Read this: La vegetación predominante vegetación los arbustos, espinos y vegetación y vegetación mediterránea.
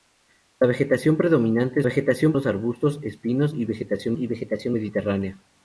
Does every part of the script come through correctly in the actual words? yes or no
yes